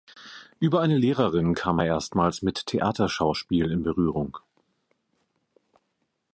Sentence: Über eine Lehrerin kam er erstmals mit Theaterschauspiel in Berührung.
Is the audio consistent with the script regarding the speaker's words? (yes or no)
yes